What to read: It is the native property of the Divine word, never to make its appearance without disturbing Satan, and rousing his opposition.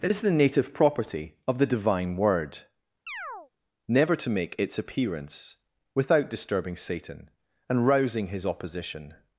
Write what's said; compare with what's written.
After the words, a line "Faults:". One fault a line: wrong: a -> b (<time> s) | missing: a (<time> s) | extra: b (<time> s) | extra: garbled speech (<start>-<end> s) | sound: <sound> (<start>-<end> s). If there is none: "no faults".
It is the native property of the Divine word, never to make its appearance without disturbing Satan, and rousing his opposition.
Faults:
sound: chirp (3.1-3.5 s)